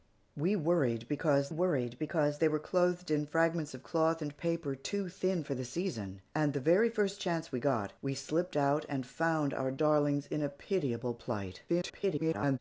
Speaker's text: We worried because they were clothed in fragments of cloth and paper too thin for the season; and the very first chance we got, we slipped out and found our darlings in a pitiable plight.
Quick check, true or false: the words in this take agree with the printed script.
false